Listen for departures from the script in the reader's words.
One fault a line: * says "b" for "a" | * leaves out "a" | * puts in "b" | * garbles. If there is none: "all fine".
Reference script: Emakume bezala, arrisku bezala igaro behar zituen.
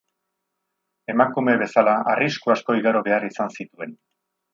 * says "asko" for "bezala"
* puts in "izan"